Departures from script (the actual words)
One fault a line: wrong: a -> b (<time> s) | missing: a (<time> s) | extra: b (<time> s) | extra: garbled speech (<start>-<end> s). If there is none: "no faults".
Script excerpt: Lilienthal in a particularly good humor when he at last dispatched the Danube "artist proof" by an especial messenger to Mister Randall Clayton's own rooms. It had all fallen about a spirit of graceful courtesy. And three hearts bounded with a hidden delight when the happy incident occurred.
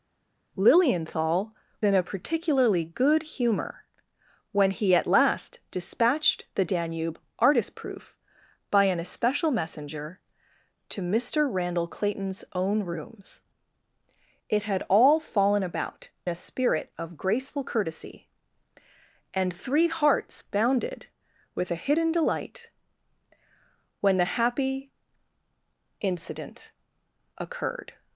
no faults